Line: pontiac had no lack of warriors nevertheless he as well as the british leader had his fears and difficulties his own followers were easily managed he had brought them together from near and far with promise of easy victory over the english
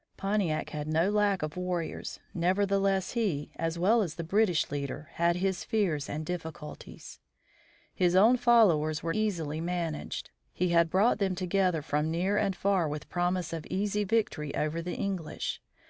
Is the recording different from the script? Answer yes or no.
no